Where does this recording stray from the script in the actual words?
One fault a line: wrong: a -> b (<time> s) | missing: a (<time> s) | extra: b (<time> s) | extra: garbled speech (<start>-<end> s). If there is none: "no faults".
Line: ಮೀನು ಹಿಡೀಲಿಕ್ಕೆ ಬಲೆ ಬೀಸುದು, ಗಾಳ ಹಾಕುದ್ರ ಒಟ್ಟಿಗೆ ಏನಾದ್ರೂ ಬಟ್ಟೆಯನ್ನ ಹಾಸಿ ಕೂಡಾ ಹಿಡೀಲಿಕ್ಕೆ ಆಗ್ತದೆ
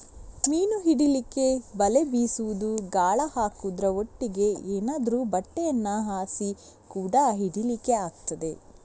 no faults